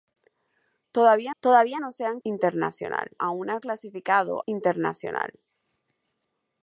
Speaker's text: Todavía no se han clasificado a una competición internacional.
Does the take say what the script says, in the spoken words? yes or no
no